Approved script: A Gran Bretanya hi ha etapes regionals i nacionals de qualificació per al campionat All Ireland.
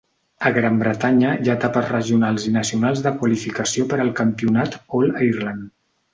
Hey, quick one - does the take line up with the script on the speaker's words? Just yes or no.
yes